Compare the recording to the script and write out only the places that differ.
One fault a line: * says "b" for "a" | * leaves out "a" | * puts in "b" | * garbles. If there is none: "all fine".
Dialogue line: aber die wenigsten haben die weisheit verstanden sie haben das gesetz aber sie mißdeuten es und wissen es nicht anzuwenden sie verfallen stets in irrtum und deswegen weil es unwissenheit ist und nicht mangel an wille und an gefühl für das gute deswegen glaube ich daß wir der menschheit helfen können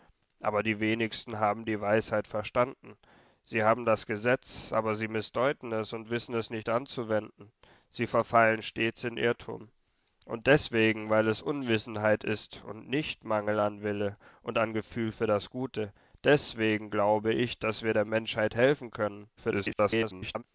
* garbles